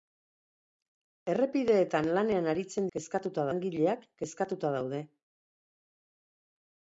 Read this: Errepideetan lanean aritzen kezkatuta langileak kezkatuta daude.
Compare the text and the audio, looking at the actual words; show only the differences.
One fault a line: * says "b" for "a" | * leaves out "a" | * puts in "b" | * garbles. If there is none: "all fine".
all fine